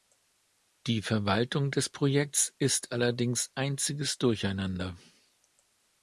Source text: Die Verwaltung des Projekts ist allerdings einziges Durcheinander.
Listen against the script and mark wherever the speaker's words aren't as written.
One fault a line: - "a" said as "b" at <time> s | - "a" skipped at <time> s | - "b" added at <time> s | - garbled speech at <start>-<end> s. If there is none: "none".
none